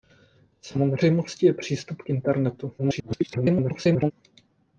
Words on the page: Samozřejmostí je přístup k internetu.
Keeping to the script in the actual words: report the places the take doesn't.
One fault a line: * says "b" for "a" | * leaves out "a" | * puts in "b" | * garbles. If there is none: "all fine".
* garbles